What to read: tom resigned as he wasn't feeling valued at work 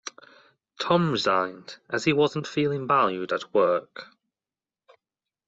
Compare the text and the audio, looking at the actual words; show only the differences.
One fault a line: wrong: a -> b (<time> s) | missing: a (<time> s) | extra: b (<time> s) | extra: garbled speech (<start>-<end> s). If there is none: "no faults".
no faults